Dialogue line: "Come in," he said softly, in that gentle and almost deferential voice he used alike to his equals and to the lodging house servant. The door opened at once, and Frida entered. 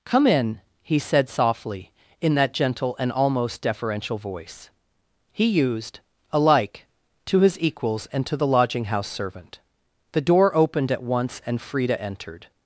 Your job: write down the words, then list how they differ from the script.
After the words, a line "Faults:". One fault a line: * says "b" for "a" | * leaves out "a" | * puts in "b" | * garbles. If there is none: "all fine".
"Come in," he said softly, in that gentle and almost deferential voice he used alike to his equals and to the lodging house servant. The door opened at once, and Frida entered.
Faults:
all fine